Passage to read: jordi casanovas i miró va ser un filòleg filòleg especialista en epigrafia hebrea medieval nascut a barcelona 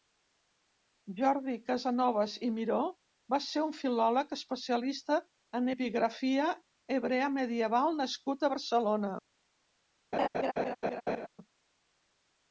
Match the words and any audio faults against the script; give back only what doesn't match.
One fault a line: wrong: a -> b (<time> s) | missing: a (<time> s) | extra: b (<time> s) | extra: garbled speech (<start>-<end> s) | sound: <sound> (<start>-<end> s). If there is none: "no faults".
missing: filòleg (4.3 s)
sound: laugh (10.1-11.3 s)